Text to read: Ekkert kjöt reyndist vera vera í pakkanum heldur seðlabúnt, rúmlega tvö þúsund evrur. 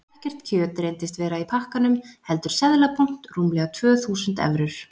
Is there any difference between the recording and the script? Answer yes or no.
yes